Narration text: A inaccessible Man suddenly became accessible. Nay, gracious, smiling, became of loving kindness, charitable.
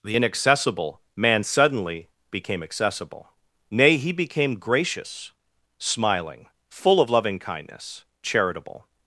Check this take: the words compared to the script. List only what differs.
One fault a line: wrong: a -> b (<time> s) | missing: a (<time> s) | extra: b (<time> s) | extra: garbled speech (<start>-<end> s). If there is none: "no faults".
wrong: A -> The (0.0 s)
extra: he became (4.0 s)
wrong: became -> full (6.7 s)